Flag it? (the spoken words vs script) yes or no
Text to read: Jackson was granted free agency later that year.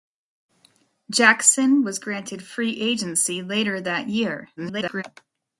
yes